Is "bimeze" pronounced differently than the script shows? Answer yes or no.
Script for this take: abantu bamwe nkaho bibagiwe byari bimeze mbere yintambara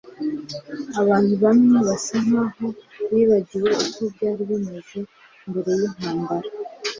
no